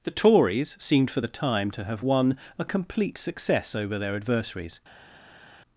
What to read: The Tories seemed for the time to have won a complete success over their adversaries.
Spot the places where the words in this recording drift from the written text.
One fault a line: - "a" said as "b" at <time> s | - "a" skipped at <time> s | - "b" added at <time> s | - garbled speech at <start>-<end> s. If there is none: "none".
none